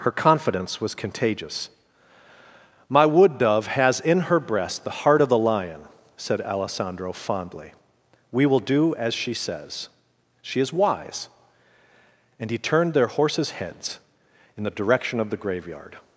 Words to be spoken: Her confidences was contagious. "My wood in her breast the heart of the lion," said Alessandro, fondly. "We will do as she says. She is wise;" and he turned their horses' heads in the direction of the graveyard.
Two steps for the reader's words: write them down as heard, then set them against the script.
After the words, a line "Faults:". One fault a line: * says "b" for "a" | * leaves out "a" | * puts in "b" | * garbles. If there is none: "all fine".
Her confidence was contagious. "My wood dove has in her breast the heart of the lion," said Alessandro, fondly. "We will do as she says. She is wise;" and he turned their horses' heads in the direction of the graveyard.
Faults:
* says "confidence" for "confidences"
* puts in "dove has"